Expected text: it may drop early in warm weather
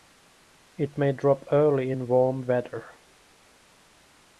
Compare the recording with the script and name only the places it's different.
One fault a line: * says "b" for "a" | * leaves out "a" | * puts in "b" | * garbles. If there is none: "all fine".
all fine